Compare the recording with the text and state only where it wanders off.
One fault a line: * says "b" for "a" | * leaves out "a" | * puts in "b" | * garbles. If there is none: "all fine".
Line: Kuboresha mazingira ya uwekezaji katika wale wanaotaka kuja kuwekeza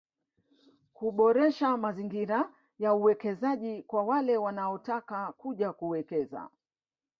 * says "kwa" for "katika"